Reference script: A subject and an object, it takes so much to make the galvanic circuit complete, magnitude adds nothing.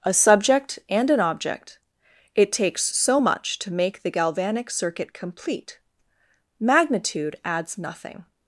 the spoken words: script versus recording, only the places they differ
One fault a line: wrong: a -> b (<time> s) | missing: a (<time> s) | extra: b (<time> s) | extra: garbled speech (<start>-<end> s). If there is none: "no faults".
no faults